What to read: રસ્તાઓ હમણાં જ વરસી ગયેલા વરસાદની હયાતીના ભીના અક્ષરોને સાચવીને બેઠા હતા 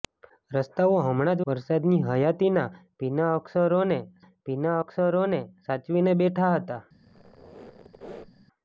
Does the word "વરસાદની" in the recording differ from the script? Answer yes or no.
yes